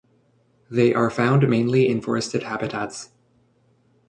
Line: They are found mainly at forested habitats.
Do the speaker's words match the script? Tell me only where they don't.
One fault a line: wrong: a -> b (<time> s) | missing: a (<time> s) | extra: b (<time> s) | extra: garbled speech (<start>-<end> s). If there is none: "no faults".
wrong: at -> in (1.9 s)